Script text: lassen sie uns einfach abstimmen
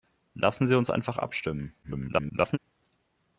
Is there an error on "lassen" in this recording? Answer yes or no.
no